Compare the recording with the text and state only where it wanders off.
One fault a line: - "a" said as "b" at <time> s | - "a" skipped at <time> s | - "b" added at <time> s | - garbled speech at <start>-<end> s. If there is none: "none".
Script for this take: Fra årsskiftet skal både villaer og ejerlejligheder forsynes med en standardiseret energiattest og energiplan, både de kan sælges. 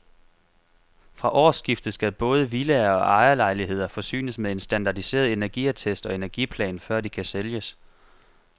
- "både" said as "før" at 6.8 s